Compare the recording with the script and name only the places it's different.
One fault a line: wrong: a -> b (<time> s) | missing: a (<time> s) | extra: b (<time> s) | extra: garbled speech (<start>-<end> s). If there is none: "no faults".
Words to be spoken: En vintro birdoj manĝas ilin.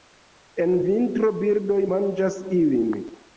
no faults